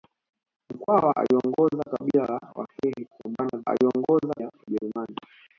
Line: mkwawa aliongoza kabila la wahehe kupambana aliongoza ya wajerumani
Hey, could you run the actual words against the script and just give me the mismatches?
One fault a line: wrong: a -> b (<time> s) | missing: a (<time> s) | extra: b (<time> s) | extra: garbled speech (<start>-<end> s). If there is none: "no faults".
no faults